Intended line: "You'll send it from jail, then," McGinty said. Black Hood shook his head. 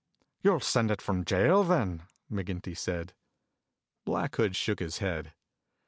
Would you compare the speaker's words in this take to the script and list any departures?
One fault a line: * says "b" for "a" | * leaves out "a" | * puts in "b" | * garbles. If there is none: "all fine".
all fine